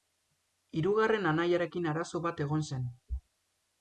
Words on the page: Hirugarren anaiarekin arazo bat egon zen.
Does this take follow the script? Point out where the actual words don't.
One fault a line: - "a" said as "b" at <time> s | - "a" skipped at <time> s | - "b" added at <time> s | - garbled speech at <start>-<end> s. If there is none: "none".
none